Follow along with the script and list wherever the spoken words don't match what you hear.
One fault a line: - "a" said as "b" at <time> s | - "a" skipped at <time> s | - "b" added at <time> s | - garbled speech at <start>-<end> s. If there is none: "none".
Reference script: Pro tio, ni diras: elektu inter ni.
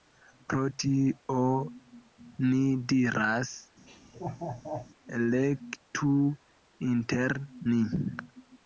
none